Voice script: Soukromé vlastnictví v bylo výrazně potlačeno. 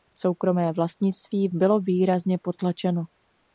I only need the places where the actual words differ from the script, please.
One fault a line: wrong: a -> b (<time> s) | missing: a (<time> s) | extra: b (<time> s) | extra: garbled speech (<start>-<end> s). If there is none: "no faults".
no faults